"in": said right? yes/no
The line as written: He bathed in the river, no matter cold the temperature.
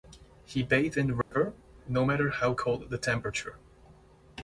yes